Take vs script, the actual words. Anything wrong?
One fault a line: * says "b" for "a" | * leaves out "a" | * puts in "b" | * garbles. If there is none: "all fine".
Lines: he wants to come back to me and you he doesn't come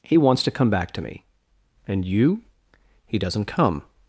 all fine